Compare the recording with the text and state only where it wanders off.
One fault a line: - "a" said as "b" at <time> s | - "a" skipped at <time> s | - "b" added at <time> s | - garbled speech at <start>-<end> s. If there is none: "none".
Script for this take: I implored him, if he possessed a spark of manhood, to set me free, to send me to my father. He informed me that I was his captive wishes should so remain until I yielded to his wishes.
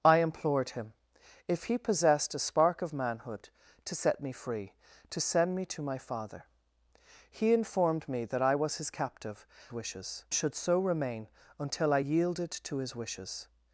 none